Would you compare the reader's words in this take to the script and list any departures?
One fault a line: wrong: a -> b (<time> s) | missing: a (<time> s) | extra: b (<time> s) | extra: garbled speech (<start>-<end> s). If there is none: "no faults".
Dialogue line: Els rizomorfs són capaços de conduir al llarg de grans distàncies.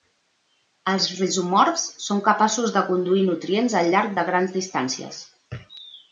extra: nutrients (3.3 s)